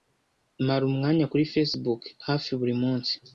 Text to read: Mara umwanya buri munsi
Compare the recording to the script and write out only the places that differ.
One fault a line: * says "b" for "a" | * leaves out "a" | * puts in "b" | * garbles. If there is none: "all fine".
* puts in "kuri Facebook hafi"